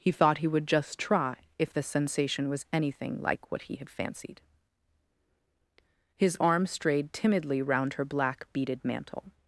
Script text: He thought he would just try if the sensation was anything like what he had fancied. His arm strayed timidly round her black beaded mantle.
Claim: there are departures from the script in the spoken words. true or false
false